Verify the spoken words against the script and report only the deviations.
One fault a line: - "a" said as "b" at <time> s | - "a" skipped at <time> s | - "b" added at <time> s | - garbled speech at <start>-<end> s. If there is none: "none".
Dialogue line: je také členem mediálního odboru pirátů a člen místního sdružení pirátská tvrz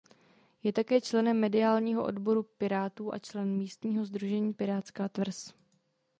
none